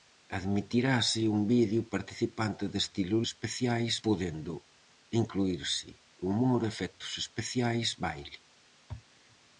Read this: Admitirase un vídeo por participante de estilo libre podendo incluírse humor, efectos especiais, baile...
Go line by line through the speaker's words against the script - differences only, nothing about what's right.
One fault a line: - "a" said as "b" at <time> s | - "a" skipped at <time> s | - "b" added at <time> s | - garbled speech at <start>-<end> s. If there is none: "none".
- "por" skipped at 1.8 s
- "libre" said as "especiais" at 3.3 s